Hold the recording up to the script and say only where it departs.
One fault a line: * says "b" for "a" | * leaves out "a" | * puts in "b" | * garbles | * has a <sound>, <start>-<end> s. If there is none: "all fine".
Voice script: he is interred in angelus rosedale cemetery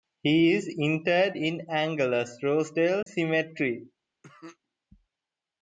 * has a dropout, 3.0-3.1 s
* has a cough, 4.2-4.6 s